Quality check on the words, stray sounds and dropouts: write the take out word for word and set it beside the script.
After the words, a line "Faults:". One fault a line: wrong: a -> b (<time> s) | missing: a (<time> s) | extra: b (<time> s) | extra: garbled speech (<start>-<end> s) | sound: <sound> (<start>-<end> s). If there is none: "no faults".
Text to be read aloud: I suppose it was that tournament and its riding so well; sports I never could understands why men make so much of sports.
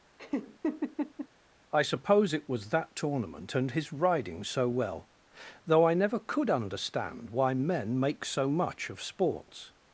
I suppose it was that tournament and his riding so well; though I never could understand why men make so much of sports.
Faults:
sound: laugh (0.2-1.3 s)
wrong: its -> his (3.7 s)
wrong: sports -> though (5.6 s)
wrong: understands -> understand (6.5 s)